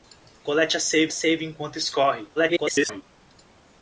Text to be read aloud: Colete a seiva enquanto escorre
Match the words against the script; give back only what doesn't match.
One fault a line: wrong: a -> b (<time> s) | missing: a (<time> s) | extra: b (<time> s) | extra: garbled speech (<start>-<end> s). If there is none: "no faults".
extra: seiva (1.1 s)
extra: garbled speech (2.4-3.0 s)